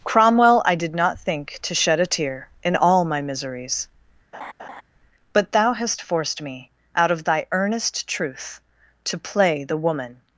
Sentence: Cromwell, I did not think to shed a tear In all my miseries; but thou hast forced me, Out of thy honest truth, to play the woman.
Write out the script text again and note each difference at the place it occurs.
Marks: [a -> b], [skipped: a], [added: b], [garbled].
Cromwell, I did not think to shed a tear In all my miseries; but thou hast forced me, Out of thy [honest -> earnest] truth, to play the woman.